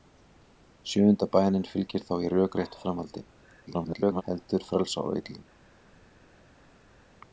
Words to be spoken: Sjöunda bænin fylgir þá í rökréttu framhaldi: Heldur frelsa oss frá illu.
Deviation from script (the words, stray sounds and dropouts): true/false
true